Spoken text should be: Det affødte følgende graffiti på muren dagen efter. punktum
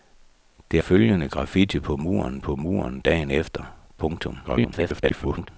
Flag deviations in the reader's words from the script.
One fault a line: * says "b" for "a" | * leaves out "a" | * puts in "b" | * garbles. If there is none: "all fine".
* leaves out "affødte"
* puts in "på muren"
* garbles